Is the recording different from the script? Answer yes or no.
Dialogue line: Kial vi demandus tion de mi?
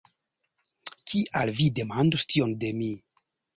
no